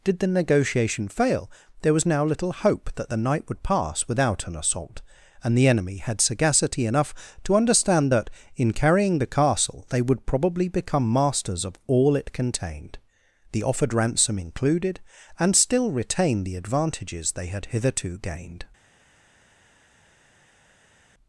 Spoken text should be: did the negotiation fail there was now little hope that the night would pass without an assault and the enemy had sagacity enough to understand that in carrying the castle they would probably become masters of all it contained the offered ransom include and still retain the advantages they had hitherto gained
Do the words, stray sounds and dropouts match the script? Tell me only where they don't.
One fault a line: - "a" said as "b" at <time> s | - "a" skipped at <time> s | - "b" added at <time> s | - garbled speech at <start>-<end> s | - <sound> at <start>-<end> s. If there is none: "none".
- "include" said as "included" at 14.4 s